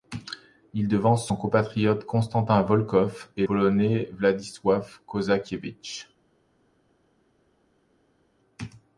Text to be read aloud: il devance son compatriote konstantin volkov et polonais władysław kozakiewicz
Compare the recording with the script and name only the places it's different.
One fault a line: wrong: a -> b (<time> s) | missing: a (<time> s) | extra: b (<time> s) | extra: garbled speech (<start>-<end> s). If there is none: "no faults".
no faults